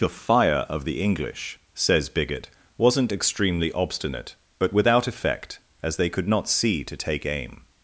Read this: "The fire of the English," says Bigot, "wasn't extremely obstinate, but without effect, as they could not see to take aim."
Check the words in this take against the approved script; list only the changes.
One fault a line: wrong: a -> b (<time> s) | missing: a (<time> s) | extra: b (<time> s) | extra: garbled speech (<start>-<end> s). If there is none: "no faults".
no faults